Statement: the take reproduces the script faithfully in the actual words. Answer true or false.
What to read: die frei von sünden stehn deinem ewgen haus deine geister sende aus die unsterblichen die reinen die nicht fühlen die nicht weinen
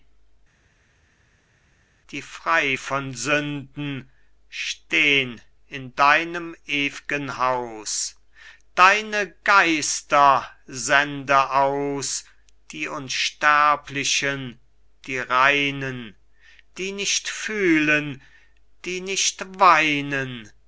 false